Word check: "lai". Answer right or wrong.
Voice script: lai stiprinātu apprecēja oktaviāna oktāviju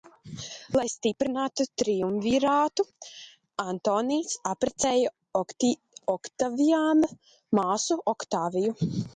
right